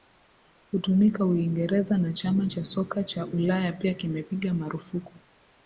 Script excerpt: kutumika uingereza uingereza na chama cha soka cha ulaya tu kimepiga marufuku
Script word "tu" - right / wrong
wrong